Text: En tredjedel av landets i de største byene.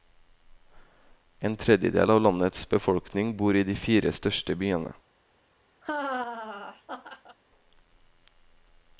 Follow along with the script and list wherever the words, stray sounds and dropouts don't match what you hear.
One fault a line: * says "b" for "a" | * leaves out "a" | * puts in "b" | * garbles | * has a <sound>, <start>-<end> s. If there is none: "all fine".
* puts in "befolkning bor"
* puts in "fire"
* has a laugh, 5.8-7.4 s